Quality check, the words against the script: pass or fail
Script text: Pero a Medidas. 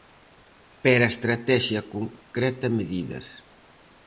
fail